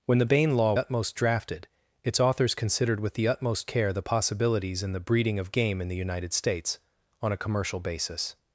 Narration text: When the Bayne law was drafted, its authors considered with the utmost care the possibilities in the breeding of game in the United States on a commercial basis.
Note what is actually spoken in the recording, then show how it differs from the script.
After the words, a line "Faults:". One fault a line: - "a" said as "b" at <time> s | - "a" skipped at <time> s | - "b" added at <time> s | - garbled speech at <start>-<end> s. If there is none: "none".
When the Bayne law utmost drafted, its authors considered with the utmost care the possibilities in the breeding of game in the United States on a commercial basis.
Faults:
- "was" said as "utmost" at 0.8 s